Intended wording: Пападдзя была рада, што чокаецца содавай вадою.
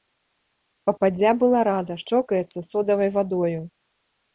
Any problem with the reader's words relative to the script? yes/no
yes